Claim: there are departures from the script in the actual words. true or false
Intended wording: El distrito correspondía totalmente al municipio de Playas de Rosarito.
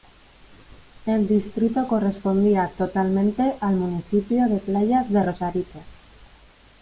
false